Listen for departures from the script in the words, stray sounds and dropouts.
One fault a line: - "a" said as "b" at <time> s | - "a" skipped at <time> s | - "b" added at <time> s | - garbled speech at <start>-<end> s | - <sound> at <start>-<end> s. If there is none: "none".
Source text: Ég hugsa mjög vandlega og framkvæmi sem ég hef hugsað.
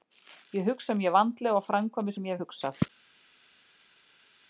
none